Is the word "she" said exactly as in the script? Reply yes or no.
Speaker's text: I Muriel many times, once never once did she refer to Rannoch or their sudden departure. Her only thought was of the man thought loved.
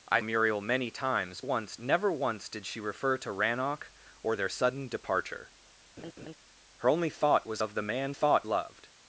yes